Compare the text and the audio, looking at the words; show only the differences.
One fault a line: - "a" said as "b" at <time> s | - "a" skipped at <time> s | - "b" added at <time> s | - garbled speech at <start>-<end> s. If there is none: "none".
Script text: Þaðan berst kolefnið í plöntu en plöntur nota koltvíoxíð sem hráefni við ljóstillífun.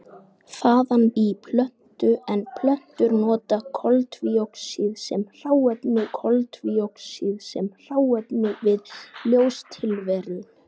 - "berst kolefnið" skipped at 1.0 s
- "koltvíoxíð sem hráefni" added at 6.2 s